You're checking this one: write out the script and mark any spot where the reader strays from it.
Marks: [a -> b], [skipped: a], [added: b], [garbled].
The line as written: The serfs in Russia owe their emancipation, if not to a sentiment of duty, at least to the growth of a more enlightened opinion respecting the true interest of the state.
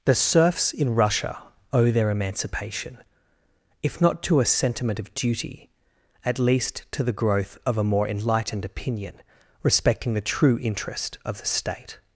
The serfs in Russia owe their emancipation, if not to a sentiment of duty, at least to the growth of a more enlightened opinion respecting the true interest of the state.